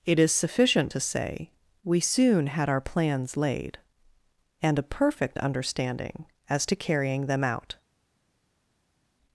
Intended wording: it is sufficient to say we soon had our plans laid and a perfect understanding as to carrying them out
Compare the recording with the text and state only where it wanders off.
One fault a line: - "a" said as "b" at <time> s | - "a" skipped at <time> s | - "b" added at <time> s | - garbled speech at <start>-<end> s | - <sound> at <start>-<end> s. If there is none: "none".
none